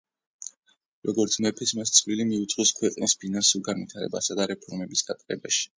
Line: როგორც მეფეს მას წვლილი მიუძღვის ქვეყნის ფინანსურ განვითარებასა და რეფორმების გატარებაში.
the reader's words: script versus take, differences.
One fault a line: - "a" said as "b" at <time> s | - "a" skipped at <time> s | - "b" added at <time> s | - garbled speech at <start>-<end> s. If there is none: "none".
none